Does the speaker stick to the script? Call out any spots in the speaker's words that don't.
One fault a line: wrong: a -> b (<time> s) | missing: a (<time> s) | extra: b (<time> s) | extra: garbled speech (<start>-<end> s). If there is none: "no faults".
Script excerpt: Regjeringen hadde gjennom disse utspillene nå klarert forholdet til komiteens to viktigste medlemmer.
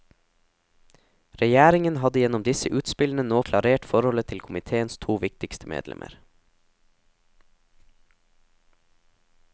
no faults